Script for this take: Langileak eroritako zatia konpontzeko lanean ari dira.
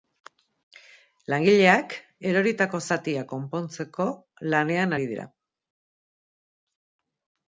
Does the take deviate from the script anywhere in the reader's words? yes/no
no